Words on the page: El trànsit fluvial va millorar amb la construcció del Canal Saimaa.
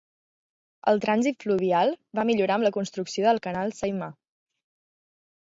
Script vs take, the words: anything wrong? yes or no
no